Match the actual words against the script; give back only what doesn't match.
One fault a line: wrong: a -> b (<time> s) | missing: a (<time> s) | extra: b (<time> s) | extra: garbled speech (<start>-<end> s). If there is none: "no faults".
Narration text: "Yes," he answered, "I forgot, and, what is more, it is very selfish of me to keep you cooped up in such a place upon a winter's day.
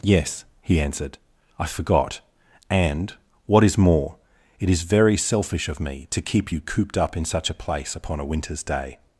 no faults